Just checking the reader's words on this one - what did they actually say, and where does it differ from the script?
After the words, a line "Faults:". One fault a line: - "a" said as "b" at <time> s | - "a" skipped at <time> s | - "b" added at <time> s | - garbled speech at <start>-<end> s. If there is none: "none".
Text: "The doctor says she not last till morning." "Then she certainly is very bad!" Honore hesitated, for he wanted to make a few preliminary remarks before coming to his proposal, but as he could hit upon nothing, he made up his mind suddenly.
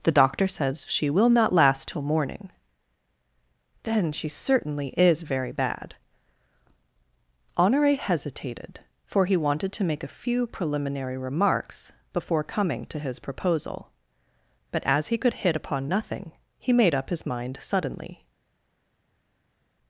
"The doctor says she will not last till morning." "Then she certainly is very bad!" Honore hesitated, for he wanted to make a few preliminary remarks before coming to his proposal, but as he could hit upon nothing, he made up his mind suddenly.
Faults:
- "will" added at 1.1 s